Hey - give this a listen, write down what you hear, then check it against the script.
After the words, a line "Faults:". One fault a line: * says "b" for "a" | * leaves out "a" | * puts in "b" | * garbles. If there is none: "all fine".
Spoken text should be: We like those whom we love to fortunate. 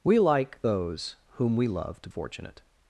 We like those whom we love to fortunate.
Faults:
all fine